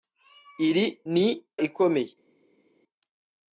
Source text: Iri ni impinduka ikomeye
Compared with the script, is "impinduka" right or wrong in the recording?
wrong